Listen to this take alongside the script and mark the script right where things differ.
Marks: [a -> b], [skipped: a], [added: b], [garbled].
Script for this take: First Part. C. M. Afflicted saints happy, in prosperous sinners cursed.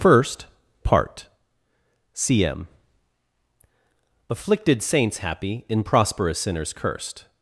First Part. C. M. Afflicted saints happy, in prosperous sinners cursed.